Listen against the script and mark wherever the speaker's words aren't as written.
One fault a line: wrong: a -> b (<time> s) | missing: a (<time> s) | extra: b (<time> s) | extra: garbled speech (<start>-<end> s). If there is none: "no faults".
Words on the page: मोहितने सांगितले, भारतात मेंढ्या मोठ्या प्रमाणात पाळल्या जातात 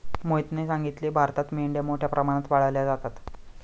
no faults